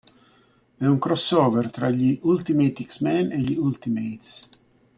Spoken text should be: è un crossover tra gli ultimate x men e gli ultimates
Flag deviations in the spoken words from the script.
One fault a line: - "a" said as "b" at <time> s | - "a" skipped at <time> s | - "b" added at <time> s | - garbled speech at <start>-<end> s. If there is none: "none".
none